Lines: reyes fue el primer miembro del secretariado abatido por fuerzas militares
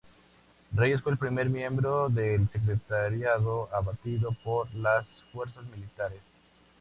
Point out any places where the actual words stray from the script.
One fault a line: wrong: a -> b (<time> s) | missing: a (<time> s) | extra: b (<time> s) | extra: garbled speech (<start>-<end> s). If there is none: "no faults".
extra: las (4.8 s)